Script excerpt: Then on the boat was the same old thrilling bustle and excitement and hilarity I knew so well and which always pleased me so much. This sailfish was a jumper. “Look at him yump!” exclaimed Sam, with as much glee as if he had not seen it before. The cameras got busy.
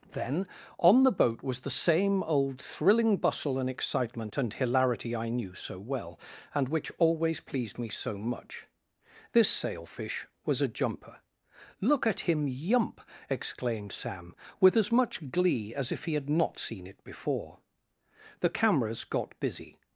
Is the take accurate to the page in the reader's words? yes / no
yes